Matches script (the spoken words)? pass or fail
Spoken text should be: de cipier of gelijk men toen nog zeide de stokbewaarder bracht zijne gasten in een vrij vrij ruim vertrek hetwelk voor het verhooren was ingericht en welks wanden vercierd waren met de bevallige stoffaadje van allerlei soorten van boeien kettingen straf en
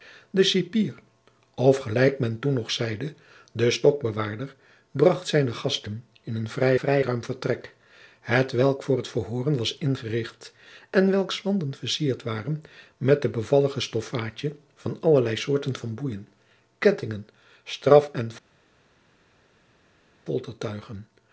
pass